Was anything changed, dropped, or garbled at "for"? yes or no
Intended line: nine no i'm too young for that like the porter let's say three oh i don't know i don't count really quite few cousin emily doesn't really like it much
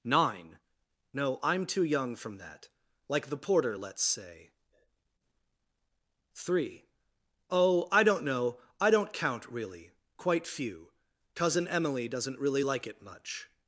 yes